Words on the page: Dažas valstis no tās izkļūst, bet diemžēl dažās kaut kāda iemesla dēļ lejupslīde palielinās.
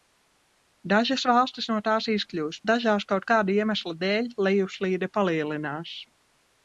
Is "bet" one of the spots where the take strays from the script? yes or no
yes